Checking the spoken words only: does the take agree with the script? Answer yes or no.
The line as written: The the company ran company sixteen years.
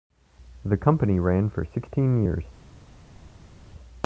no